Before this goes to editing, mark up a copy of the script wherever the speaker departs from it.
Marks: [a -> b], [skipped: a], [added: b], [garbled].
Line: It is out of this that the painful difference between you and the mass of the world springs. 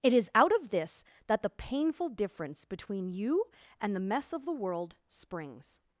It is out of this that the painful difference between you and the [mass -> mess] of the world springs.